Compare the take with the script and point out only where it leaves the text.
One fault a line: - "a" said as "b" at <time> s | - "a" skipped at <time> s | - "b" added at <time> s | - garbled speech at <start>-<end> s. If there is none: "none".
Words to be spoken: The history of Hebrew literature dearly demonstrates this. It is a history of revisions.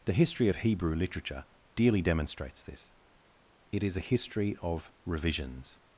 none